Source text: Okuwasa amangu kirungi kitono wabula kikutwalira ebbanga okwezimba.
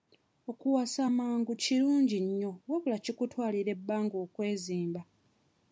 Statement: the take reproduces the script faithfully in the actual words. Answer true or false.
false